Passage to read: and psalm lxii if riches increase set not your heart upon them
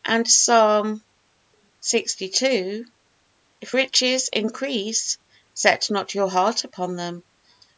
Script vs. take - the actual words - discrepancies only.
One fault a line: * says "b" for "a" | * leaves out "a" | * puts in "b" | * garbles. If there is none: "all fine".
all fine